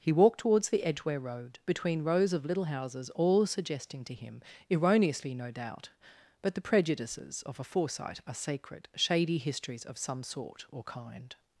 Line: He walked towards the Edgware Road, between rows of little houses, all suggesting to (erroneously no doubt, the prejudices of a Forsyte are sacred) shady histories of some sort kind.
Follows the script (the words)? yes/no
no